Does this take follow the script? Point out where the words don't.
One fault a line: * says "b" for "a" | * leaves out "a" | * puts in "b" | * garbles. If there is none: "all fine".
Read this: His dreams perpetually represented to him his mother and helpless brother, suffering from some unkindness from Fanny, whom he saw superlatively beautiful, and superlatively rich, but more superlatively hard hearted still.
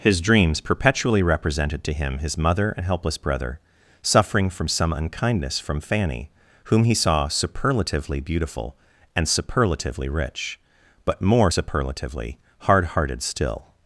all fine